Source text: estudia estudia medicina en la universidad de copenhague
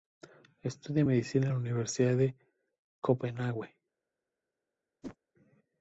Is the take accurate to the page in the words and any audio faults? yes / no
no